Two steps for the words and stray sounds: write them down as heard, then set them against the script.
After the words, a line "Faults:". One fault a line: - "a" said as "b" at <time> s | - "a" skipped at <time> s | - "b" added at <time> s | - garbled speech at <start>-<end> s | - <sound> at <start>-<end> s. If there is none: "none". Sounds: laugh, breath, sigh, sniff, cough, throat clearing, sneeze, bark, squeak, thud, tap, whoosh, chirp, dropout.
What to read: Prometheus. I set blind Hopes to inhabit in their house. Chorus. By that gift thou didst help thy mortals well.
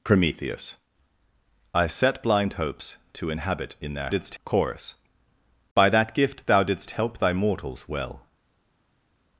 Prometheus. I set blind Hopes to inhabit in their didst. Chorus. By that gift thou didst help thy mortals well.
Faults:
- "house" said as "didst" at 4.1 s